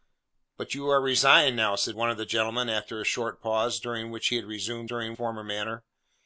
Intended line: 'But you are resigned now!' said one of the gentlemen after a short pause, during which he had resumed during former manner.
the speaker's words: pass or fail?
pass